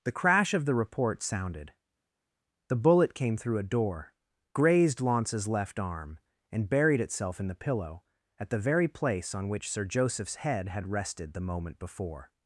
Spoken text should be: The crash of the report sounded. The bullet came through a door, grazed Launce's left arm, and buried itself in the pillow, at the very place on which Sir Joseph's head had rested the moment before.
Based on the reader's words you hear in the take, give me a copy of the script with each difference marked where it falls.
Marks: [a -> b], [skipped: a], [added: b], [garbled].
The crash of the report sounded. The bullet came through a door, grazed Launce's left arm, and buried itself in the pillow, at the very place on which Sir Joseph's head had rested the moment before.